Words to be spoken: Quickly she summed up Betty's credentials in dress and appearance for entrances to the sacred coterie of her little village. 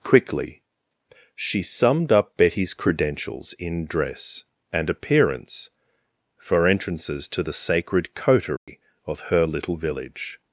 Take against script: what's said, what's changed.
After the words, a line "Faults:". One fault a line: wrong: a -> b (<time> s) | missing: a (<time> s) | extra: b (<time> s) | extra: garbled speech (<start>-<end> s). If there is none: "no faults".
Quickly she summed up Betty's credentials in dress and appearance for entrances to the sacred coterie of her little village.
Faults:
no faults